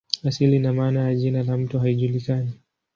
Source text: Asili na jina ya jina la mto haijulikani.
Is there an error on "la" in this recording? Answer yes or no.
no